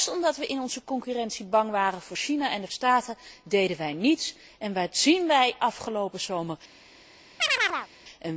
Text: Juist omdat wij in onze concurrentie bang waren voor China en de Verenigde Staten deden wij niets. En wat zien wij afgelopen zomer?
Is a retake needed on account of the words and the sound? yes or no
yes